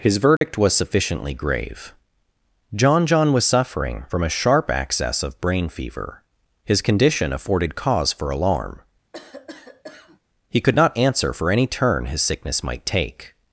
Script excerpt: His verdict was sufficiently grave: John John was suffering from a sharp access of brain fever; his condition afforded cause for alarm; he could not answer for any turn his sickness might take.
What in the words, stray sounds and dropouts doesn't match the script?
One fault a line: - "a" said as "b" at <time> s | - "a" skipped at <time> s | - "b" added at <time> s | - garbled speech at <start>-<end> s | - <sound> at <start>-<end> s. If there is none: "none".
- dropout at 0.4-0.4 s
- cough at 9.1-10.2 s